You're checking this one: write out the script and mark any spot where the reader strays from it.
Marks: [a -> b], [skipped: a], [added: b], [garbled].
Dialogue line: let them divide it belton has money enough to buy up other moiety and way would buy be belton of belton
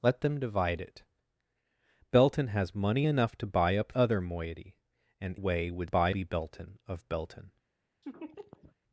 let them divide it belton has money enough to buy up other moiety and way would buy be belton of belton